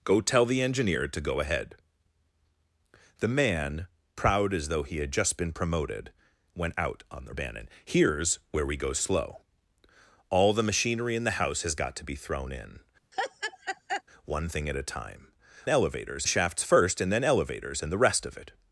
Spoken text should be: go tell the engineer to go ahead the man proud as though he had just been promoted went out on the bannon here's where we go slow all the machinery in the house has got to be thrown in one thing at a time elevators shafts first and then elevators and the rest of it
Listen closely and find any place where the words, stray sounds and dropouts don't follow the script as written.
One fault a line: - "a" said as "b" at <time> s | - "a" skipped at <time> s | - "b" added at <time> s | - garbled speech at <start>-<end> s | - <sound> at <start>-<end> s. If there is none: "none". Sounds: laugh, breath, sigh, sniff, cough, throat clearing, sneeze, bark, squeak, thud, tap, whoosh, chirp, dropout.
- laugh at 13.1-14.0 s